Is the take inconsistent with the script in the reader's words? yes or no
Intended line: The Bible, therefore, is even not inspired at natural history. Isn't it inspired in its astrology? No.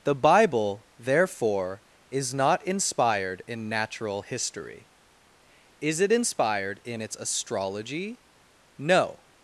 yes